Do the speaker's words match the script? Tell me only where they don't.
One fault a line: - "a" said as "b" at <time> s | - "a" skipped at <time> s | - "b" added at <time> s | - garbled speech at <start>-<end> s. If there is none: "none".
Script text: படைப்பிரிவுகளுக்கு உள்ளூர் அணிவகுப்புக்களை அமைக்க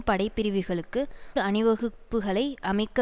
- "உள்ளூர்" skipped at 1.0 s